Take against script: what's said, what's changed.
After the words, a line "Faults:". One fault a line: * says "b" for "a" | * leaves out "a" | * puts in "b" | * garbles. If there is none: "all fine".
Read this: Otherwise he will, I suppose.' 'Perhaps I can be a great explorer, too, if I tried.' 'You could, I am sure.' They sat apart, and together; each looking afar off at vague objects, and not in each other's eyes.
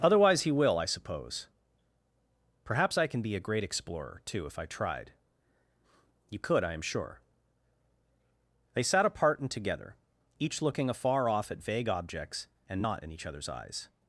Otherwise he will, I suppose.' 'Perhaps I can be a great explorer, too, if I tried.' 'You could, I am sure.' They sat apart, and together; each looking afar off at vague objects, and not in each other's eyes.
Faults:
all fine